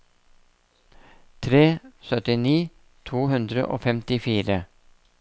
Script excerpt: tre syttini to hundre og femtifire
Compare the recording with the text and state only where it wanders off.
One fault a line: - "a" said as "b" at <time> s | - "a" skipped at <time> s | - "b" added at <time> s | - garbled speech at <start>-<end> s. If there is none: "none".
none